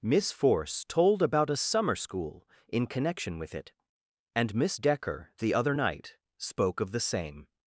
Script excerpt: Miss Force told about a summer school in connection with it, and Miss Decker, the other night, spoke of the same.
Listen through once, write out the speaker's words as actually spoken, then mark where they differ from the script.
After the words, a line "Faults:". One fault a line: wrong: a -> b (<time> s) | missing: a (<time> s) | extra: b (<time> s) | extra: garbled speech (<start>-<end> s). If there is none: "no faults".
Miss Force told about a summer school in connection with it, and Miss Decker, the other night, spoke of the same.
Faults:
no faults